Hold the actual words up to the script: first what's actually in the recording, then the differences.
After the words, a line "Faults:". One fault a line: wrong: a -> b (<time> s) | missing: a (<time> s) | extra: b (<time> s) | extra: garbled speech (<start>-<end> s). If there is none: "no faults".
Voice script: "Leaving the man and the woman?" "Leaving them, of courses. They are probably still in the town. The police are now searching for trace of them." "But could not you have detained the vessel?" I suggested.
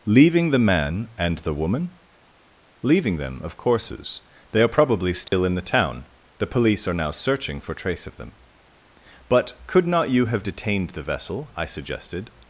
"Leaving the man and the woman?" "Leaving them, of courses. They are probably still in the town. The police are now searching for trace of them." "But could not you have detained the vessel?" I suggested.
Faults:
no faults